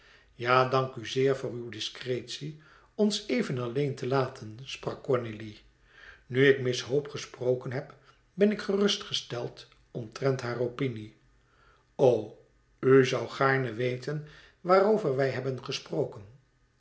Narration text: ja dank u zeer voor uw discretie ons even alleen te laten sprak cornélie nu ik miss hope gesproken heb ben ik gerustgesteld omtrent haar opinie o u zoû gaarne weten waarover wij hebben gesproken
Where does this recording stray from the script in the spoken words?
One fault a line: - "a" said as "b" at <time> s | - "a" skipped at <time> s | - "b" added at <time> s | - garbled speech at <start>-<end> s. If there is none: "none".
none